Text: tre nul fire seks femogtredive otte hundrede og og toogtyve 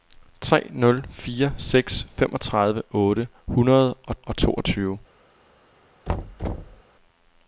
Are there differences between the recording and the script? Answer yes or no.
no